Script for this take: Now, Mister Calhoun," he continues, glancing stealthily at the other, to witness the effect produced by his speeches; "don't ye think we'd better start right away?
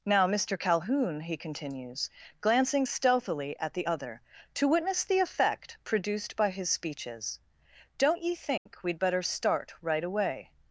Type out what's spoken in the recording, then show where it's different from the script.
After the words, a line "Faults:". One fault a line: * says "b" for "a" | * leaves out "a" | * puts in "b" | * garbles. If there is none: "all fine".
Now, Mister Calhoun," he continues, glancing stealthily at the other, to witness the effect produced by his speeches; "don't ye think we'd better start right away?
Faults:
all fine